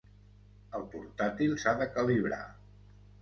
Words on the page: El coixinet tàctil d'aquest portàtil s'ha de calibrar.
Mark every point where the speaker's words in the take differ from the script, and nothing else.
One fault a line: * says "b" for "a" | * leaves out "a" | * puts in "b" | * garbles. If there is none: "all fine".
* leaves out "coixinet tàctil d'aquest"